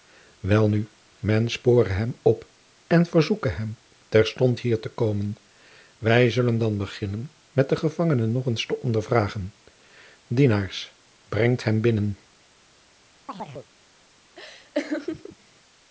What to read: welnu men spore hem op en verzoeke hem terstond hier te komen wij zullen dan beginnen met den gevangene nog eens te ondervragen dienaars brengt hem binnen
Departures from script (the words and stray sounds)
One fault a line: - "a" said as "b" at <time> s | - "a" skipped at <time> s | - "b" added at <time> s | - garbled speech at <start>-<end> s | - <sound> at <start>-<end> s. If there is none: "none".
- chirp at 13.3-13.7 s
- laugh at 14.4-15.4 s